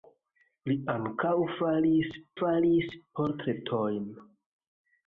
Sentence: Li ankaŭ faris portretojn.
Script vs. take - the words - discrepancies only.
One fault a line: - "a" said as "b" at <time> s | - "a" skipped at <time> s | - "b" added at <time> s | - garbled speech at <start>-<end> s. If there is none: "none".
- "faris" added at 2.4 s